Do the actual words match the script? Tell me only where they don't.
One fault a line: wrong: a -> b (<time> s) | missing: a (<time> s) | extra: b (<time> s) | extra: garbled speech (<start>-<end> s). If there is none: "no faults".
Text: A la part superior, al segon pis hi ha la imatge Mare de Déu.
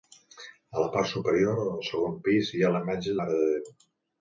no faults